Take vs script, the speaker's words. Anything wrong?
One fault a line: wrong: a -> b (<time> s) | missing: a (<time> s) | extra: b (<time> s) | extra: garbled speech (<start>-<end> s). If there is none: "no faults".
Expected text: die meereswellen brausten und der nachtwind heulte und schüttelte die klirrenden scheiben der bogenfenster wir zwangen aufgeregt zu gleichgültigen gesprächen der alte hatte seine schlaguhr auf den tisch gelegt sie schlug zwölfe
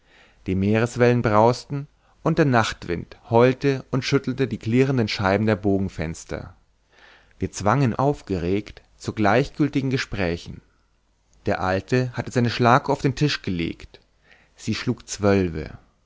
no faults